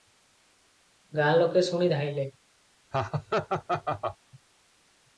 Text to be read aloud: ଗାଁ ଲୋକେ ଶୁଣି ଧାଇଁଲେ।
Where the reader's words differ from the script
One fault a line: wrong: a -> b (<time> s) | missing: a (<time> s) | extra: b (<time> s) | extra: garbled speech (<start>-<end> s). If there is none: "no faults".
no faults